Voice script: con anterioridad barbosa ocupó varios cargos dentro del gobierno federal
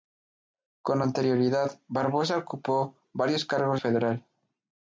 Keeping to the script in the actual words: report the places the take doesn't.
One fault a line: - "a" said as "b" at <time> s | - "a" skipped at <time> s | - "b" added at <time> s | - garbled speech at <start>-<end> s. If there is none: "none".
- "dentro del gobierno" skipped at 3.8 s